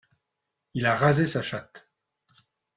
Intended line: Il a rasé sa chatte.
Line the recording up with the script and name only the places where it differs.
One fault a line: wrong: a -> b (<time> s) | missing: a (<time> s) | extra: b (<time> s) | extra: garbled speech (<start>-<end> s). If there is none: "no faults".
no faults